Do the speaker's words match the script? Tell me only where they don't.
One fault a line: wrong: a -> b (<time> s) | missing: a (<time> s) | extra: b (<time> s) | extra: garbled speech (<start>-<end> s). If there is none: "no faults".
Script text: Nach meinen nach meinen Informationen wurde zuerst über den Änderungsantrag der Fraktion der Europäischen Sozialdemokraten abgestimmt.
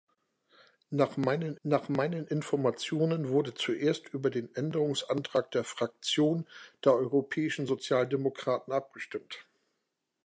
no faults